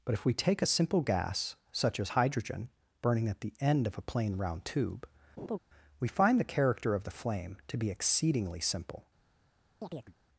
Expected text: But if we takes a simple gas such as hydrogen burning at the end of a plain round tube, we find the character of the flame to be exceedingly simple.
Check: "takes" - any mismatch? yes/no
yes